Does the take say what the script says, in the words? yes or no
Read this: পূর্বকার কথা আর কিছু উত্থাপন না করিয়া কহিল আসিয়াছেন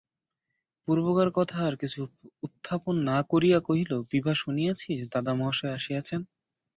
no